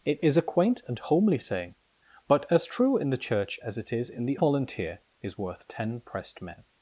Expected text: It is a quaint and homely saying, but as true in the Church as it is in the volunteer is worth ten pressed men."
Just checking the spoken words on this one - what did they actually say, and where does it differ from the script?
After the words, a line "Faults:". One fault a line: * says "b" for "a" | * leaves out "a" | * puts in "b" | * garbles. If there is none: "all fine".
It is a quaint and homely saying, but as true in the Church as it is in the volunteer is worth ten pressed men."
Faults:
all fine